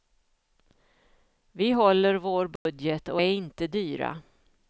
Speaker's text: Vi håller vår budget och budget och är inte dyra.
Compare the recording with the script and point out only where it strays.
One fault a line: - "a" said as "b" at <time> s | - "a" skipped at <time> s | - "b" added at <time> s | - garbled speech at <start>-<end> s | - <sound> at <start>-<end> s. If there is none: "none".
- dropout at 2.6-2.7 s
- "budget och" skipped at 3.2 s